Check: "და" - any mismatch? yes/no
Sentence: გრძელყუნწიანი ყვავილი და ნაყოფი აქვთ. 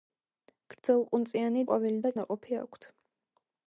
no